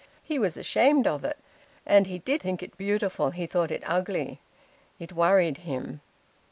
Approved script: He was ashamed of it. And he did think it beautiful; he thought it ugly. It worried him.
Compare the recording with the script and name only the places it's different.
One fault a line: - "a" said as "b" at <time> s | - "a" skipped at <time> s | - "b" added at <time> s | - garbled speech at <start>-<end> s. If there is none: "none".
none